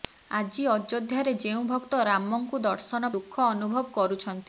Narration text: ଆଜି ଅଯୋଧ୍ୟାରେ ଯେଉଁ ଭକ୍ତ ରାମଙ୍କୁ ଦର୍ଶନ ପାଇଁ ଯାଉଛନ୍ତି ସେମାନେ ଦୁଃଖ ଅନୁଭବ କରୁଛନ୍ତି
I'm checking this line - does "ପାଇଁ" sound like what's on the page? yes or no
no